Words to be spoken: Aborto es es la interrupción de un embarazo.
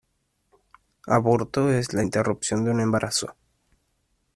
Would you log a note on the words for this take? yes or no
yes